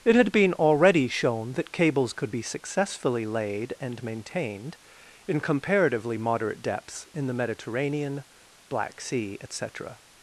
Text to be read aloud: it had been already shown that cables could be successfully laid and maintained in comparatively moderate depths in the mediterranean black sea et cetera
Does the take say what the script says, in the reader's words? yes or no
yes